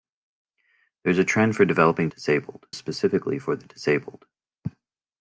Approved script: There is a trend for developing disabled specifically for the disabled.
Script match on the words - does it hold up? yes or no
yes